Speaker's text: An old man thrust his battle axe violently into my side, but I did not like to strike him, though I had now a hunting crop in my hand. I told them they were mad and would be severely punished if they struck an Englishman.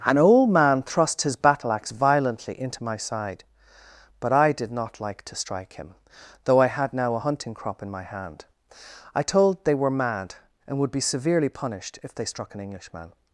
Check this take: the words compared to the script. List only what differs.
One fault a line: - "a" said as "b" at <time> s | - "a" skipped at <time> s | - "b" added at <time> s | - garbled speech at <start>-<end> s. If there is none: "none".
- "them" skipped at 9.7 s